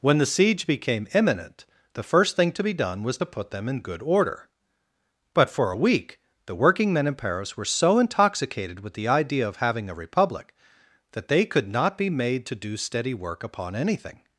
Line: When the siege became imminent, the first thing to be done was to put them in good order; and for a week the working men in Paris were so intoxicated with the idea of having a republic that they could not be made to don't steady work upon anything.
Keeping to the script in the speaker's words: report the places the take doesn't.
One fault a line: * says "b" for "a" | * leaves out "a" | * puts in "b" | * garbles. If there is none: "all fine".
* says "but" for "and"
* says "do" for "don't"